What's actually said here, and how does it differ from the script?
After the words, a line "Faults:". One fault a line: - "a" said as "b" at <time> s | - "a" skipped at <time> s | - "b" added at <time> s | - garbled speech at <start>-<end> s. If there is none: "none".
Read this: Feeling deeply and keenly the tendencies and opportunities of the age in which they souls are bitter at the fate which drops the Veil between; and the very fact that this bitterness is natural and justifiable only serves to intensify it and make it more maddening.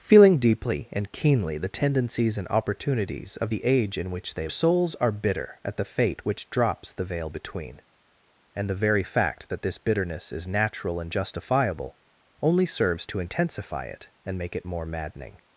Feeling deeply and keenly the tendencies and opportunities of the age in which they souls are bitter at the fate which drops the Veil between; and the very fact that this bitterness is natural and justifiable only serves to intensify it and make it more maddening.
Faults:
none